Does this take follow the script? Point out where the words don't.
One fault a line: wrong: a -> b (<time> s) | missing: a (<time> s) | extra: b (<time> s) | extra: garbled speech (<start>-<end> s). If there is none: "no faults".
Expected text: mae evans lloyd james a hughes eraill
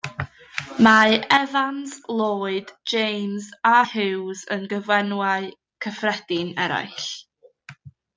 extra: yn gyfenwau cyffredin (4.6 s)